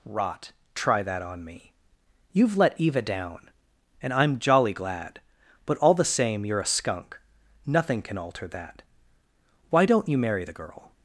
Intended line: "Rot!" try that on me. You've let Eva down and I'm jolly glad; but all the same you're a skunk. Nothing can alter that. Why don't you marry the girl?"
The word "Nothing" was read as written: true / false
true